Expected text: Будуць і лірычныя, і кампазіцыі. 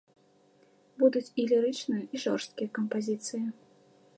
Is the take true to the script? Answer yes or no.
no